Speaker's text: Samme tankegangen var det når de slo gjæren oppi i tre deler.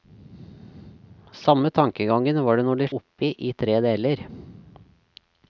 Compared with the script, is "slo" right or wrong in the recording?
wrong